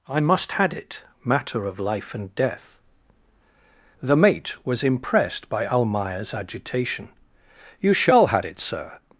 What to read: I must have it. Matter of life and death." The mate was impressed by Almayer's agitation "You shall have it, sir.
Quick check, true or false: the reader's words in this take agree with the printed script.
false